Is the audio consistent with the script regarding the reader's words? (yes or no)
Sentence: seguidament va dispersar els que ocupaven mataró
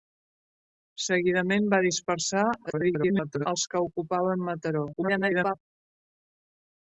no